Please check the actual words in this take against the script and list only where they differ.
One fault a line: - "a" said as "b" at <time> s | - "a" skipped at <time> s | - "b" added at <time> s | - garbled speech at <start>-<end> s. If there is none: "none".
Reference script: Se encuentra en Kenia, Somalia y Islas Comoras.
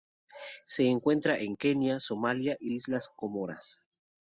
none